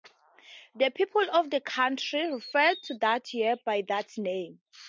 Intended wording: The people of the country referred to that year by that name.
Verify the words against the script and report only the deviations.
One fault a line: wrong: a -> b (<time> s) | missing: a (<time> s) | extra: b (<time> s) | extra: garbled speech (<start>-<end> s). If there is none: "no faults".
no faults